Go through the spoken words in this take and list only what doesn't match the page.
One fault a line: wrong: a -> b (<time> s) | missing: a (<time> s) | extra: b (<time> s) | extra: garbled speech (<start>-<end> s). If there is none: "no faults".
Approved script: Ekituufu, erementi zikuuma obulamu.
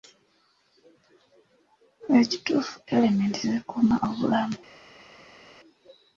no faults